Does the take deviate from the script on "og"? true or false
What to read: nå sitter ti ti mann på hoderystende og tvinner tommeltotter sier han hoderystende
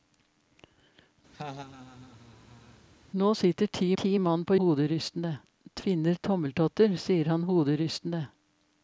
false